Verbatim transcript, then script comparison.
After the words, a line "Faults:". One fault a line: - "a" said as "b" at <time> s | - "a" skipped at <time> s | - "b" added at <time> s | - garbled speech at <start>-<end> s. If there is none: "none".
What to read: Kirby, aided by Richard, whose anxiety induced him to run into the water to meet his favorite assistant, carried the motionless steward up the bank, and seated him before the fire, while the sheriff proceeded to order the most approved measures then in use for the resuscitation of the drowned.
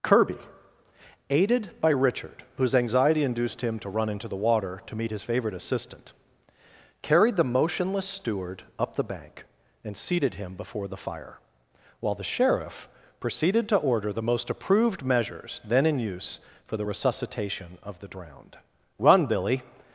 Kirby, aided by Richard, whose anxiety induced him to run into the water to meet his favorite assistant, carried the motionless steward up the bank, and seated him before the fire, while the sheriff proceeded to order the most approved measures then in use for the resuscitation of the drowned. "Run, Billy
Faults:
- "Run Billy" added at 19.0 s